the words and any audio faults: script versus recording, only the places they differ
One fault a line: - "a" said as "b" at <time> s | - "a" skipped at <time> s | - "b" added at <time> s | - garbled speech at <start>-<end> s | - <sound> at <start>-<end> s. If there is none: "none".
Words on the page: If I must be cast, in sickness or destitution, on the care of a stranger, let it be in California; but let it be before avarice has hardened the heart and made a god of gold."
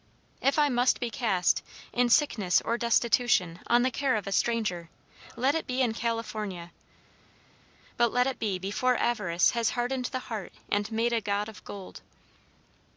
none